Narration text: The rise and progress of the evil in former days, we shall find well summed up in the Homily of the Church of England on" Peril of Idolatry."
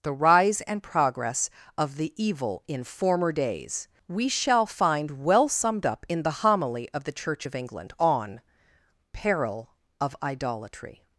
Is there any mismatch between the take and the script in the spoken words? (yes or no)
no